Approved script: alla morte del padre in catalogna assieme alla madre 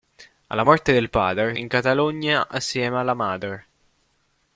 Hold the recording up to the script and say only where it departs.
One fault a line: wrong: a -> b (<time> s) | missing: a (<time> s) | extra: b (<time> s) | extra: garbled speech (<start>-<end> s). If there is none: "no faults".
no faults